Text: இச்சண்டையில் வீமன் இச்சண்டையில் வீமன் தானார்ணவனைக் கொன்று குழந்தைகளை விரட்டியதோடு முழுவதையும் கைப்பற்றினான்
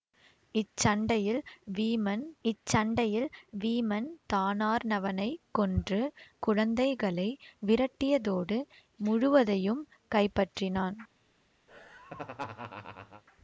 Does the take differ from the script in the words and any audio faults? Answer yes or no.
yes